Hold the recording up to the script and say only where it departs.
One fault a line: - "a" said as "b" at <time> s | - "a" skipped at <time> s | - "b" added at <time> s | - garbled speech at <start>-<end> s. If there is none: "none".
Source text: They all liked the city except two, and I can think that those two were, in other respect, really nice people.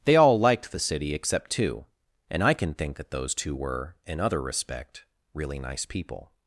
none